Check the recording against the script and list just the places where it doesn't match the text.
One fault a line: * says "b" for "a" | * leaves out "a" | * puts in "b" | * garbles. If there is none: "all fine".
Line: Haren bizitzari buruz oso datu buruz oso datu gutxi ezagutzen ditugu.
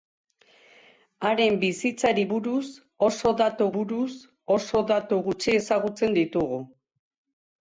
all fine